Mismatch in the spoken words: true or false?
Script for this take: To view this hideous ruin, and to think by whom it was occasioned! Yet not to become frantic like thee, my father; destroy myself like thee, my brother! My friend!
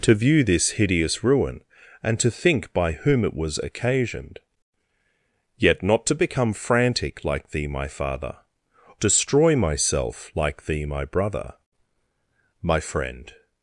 false